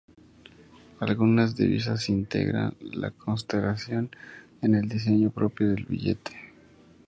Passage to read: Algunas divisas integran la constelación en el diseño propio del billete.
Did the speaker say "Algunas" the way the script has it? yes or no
yes